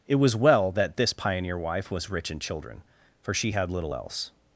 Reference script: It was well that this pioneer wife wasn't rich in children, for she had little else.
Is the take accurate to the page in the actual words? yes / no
no